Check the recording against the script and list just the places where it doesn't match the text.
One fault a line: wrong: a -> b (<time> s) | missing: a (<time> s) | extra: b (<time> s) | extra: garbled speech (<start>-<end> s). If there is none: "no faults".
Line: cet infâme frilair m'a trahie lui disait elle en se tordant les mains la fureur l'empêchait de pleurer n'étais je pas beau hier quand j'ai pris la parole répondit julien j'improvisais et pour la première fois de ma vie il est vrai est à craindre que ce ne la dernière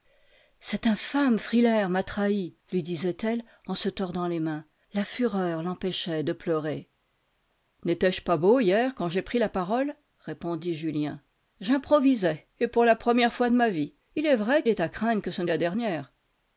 no faults